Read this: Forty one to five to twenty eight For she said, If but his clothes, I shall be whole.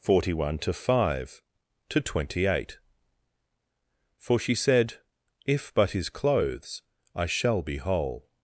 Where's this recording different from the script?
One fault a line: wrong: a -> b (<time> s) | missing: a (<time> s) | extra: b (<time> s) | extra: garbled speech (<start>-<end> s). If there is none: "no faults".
no faults